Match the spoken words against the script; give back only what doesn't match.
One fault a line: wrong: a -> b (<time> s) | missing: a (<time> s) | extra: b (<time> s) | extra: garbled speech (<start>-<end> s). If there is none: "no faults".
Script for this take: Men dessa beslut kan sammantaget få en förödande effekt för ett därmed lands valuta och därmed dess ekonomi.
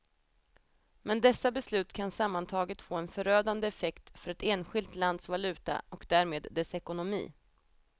wrong: därmed -> enskilt (4.4 s)